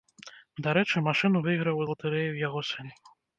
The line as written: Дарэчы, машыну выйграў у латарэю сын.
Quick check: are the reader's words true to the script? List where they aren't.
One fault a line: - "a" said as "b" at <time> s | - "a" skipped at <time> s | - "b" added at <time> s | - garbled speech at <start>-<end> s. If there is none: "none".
- "яго" added at 2.5 s